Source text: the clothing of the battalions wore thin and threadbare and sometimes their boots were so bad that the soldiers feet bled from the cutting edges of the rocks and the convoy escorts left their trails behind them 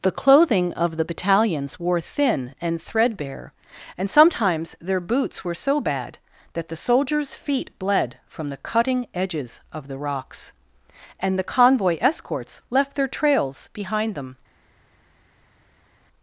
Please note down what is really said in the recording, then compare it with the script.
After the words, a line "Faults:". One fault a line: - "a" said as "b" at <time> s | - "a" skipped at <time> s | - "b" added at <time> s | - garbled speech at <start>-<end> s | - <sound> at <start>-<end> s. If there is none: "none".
the clothing of the battalions wore thin and threadbare and sometimes their boots were so bad that the soldiers feet bled from the cutting edges of the rocks and the convoy escorts left their trails behind them
Faults:
none